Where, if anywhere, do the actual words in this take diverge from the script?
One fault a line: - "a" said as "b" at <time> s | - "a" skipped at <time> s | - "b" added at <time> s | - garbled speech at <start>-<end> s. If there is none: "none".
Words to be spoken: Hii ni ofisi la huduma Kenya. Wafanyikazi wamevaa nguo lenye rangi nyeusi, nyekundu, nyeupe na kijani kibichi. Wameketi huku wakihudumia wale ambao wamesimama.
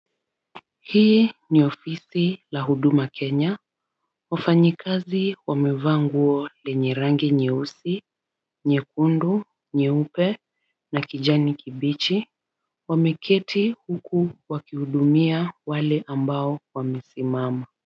none